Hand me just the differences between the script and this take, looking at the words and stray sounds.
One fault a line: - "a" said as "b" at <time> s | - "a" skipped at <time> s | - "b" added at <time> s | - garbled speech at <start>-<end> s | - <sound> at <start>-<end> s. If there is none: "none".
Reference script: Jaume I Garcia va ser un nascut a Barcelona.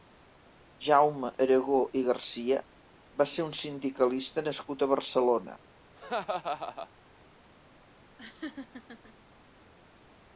- "Aragó" added at 1.4 s
- "sindicalista" added at 3.6 s
- laugh at 6.0-6.9 s
- laugh at 8.2-9.1 s